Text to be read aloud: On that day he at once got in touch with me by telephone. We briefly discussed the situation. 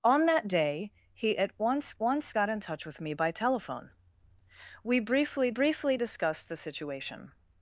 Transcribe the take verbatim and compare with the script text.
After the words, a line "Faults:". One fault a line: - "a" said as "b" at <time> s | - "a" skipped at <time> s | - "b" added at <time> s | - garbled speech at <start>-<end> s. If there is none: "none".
On that day he at once once got in touch with me by telephone. We briefly briefly discussed the situation.
Faults:
- "once" added at 2.0 s
- "briefly" added at 5.5 s